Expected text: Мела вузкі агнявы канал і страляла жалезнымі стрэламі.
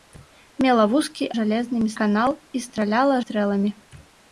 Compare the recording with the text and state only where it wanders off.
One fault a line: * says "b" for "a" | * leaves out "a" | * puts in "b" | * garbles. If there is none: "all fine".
* says "жалезнымі" for "агнявы"
* leaves out "жалезнымі"